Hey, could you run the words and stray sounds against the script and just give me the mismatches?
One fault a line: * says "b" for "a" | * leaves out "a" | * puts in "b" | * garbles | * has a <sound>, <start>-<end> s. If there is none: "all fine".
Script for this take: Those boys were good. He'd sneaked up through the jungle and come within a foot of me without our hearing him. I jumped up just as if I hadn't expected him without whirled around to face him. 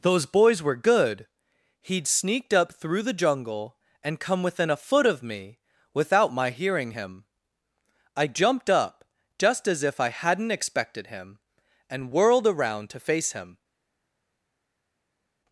* says "my" for "our"
* says "and" for "without"